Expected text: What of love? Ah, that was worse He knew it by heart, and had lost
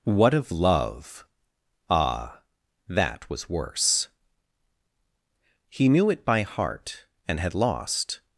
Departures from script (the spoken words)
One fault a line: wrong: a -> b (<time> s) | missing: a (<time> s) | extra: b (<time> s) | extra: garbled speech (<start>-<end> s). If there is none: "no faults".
no faults